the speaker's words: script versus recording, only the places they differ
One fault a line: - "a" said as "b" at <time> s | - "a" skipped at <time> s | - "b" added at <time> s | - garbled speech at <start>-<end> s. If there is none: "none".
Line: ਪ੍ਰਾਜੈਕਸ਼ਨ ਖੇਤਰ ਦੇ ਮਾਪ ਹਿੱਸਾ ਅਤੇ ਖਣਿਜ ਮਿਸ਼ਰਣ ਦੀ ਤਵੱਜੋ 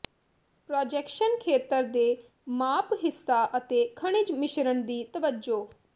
none